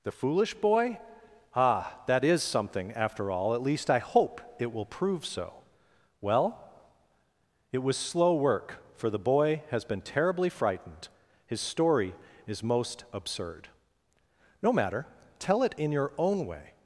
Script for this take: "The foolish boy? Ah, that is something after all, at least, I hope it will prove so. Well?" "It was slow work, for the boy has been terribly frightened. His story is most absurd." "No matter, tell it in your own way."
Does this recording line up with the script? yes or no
yes